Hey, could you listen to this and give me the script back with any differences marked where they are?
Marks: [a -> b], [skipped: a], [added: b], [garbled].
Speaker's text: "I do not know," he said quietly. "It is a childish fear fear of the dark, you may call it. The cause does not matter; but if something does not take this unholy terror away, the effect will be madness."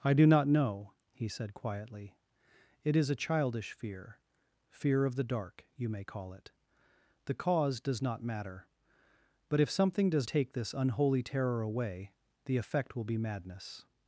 "I do not know," he said quietly. "It is a childish fear fear of the dark, you may call it. The cause does not matter; but if something does [skipped: not] take this unholy terror away, the effect will be madness."